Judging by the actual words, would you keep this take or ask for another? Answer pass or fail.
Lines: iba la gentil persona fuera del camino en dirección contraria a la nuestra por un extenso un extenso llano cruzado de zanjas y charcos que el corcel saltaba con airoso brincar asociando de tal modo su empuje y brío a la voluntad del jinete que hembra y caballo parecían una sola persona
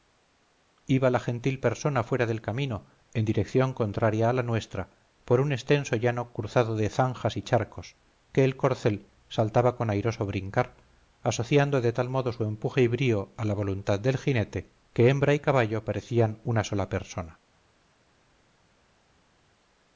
fail